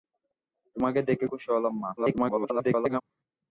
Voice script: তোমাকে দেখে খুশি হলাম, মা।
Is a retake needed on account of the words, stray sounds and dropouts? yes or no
yes